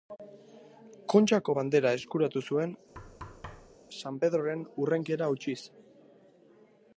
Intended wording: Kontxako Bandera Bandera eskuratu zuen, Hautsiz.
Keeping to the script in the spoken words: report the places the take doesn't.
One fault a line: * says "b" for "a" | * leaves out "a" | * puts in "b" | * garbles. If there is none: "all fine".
* leaves out "Bandera"
* puts in "San Pedroren hurrenkera"